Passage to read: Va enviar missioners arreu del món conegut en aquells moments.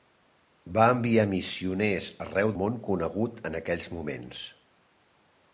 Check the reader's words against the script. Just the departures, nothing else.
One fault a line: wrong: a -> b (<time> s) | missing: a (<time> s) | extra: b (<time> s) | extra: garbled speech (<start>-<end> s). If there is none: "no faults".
missing: del (2.6 s)